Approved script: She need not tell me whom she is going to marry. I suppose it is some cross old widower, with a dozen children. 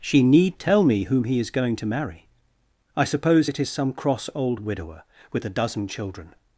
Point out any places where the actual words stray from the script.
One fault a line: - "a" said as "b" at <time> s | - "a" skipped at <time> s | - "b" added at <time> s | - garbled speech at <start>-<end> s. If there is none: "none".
- "not" skipped at 0.6 s
- "she" said as "he" at 1.2 s